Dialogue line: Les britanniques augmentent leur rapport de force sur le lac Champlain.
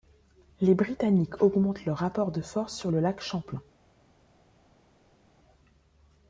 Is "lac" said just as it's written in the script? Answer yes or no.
yes